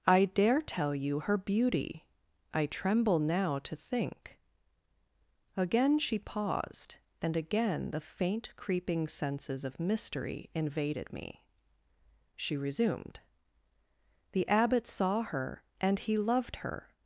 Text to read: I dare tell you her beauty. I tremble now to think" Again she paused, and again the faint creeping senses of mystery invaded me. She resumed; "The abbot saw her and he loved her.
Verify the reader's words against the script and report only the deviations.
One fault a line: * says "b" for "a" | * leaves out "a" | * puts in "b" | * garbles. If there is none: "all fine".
all fine